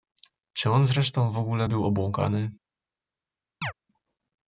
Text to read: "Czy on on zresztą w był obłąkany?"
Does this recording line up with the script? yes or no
no